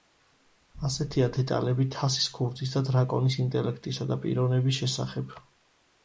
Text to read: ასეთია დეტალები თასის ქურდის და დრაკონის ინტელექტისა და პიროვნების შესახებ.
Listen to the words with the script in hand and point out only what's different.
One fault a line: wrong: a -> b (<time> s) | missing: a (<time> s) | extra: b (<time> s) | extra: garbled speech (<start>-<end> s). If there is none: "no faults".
no faults